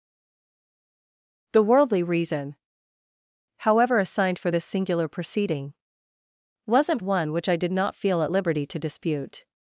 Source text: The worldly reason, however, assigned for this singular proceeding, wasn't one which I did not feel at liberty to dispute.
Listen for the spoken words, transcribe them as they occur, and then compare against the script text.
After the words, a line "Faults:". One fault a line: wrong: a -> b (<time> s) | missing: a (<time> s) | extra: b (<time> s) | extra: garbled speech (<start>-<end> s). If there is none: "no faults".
The worldly reason, however, assigned for this singular proceeding, wasn't one which I did not feel at liberty to dispute.
Faults:
no faults